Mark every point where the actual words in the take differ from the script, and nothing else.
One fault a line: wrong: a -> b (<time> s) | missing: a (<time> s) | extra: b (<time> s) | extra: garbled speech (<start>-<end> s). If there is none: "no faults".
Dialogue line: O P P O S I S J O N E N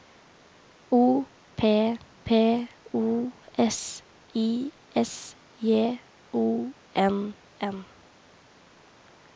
missing: E (7.3 s)